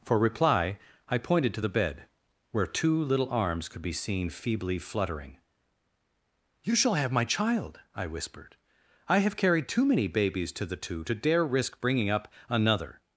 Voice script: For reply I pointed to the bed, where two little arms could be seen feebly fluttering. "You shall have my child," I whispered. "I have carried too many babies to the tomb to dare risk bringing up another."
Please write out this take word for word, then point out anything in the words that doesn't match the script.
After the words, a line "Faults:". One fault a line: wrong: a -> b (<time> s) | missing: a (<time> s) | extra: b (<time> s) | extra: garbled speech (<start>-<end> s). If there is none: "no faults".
For reply I pointed to the bed, where two little arms could be seen feebly fluttering. "You shall have my child," I whispered. "I have carried too many babies to the two to dare risk bringing up another."
Faults:
wrong: tomb -> two (10.8 s)